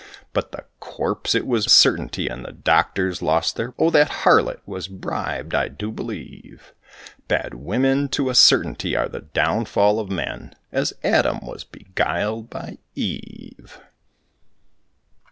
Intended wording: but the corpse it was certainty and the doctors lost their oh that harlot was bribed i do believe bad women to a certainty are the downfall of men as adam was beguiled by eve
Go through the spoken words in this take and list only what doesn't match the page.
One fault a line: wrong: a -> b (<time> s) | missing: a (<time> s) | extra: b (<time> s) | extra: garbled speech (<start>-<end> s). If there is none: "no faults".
no faults